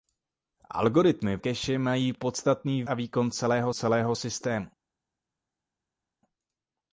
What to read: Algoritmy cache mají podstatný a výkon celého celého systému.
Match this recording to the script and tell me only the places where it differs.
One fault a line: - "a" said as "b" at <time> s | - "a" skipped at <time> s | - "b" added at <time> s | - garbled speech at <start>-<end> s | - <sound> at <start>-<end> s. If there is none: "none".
none